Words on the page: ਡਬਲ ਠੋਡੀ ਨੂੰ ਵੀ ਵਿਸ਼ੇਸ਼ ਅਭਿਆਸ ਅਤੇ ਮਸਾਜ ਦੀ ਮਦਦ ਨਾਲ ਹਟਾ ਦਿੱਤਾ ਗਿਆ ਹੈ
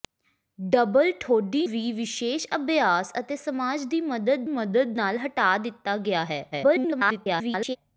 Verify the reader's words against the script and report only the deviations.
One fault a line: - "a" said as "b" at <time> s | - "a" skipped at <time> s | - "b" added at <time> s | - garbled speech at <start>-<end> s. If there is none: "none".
- "ਨੂੰ" skipped at 1.6 s
- "ਮਦਦ" added at 4.5 s
- garbled speech at 6.5-7.8 s